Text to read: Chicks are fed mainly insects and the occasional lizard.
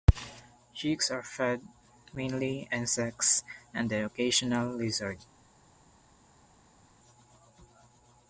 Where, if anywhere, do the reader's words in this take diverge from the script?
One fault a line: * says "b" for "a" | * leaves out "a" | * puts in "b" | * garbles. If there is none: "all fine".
all fine